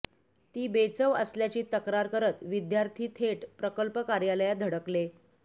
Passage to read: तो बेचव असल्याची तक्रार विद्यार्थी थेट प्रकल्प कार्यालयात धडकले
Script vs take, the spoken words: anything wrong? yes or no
yes